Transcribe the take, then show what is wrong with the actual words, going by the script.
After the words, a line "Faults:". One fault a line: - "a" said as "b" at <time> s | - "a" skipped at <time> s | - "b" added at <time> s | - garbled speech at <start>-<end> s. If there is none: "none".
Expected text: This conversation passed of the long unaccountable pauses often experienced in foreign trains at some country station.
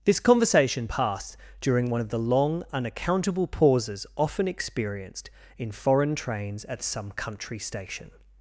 This conversation passed during one of the long unaccountable pauses often experienced in foreign trains at some country station.
Faults:
- "during one" added at 1.6 s